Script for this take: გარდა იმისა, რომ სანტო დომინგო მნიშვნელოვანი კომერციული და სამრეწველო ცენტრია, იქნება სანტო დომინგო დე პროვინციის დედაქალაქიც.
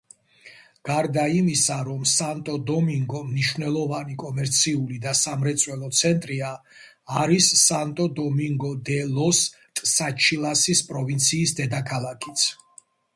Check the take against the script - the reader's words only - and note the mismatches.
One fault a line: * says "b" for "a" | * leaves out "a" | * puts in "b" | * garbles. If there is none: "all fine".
* says "არის" for "იქნება"
* puts in "ლოს ტსაჩილასის"